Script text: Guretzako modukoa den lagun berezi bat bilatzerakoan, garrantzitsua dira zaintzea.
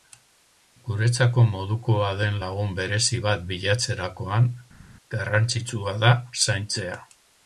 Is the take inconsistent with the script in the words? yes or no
yes